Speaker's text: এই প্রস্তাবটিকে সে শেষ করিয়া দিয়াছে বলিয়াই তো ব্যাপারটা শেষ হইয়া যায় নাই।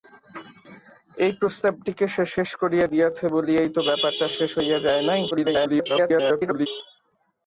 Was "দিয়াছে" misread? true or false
false